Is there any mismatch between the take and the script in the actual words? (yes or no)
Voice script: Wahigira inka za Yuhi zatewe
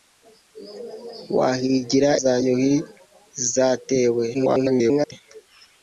yes